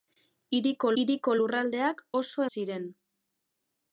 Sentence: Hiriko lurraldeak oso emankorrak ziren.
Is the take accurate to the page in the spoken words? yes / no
no